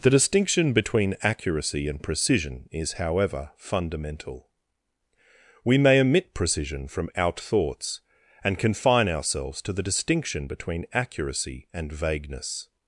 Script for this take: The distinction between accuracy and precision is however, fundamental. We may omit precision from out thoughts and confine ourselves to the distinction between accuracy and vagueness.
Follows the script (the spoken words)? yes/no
yes